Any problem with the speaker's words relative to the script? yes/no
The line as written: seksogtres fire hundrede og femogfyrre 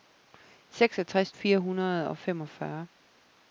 no